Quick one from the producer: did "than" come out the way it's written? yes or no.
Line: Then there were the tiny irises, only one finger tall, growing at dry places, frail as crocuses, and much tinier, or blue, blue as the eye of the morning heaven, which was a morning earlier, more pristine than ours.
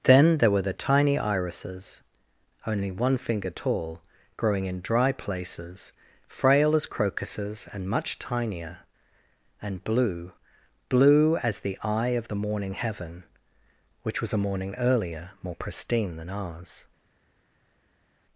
yes